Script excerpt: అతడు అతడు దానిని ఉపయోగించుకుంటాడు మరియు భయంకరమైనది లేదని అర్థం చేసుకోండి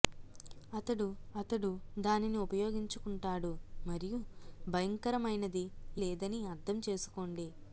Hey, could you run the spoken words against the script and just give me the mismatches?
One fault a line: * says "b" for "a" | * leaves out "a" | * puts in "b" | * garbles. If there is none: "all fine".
all fine